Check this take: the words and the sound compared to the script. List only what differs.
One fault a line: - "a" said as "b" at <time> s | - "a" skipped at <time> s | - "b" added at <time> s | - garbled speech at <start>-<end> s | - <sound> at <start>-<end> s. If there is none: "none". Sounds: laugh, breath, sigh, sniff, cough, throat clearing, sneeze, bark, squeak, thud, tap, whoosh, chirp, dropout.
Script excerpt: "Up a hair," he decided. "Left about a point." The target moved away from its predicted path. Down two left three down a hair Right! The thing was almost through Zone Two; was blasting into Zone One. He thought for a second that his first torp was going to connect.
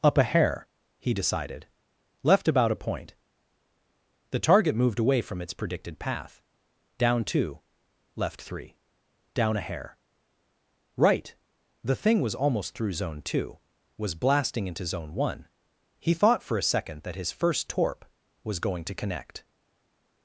none